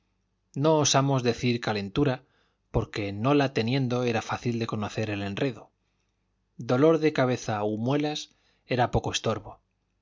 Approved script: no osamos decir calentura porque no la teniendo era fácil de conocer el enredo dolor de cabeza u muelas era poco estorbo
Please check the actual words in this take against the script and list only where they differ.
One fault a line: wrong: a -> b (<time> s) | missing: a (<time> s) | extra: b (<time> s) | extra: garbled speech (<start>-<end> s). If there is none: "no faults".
no faults